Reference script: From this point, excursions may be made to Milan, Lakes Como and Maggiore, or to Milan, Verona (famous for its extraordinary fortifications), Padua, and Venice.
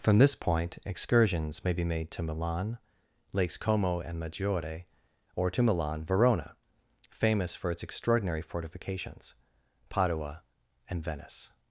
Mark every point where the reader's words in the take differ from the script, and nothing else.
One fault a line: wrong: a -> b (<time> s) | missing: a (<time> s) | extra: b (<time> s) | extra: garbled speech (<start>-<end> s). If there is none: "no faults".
no faults